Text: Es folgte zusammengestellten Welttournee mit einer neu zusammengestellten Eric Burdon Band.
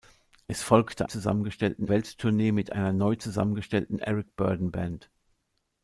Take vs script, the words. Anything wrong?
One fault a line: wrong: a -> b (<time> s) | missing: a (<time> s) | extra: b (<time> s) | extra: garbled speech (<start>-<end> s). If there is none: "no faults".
no faults